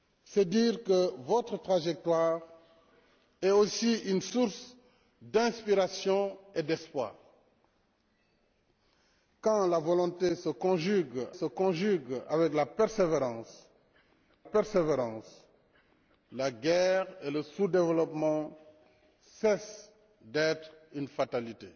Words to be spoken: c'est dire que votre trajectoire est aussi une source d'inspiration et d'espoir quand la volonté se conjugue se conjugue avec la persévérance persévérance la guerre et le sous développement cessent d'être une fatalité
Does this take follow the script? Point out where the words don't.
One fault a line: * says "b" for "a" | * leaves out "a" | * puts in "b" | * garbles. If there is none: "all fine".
all fine